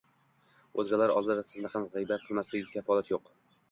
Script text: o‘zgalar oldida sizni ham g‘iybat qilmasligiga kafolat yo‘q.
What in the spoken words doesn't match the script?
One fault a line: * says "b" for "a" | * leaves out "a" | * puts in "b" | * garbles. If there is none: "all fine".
all fine